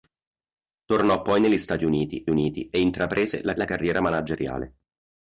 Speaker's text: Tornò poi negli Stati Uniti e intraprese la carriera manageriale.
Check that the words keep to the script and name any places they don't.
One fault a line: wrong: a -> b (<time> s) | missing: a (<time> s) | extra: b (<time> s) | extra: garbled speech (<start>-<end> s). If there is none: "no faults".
extra: Uniti (2.3 s)
extra: la (3.5 s)